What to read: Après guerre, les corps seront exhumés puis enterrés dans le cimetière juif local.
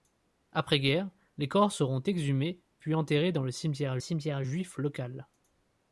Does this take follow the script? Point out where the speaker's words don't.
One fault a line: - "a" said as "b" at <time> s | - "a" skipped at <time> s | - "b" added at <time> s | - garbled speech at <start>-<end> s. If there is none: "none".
- "cimetière" added at 4.0 s